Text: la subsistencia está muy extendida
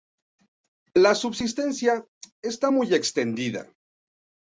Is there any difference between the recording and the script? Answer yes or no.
no